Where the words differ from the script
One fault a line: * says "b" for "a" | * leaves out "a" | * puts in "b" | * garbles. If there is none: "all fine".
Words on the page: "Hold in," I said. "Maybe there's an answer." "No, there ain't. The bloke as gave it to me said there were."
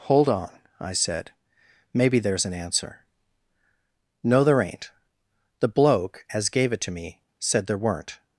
* says "on" for "in"
* says "weren't" for "were"